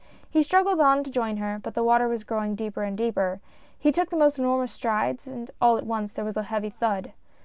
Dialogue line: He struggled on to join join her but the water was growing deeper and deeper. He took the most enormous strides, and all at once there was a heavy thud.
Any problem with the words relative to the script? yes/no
yes